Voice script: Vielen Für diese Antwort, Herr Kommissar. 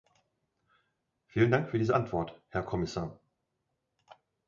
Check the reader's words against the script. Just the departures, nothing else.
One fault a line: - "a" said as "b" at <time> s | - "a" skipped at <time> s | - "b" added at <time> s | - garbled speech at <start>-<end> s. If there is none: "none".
- "Dank" added at 1.5 s